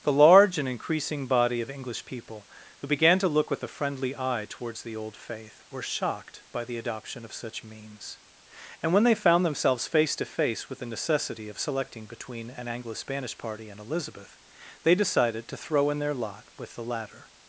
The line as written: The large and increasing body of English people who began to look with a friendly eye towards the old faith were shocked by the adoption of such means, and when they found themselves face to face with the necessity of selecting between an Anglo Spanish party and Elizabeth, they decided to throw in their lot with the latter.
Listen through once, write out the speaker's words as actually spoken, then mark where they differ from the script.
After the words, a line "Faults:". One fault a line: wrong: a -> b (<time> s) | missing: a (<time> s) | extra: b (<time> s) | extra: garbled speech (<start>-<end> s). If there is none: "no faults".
The large and increasing body of English people who began to look with a friendly eye towards the old faith were shocked by the adoption of such means, and when they found themselves face to face with the necessity of selecting between an Anglo Spanish party and Elizabeth, they decided to throw in their lot with the latter.
Faults:
no faults